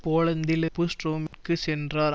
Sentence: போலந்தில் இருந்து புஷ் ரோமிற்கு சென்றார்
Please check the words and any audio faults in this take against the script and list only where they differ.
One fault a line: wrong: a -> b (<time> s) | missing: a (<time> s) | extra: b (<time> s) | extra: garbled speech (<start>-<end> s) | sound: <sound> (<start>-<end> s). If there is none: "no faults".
missing: இருந்து (0.7 s)
sound: dropout (1.3-1.3 s)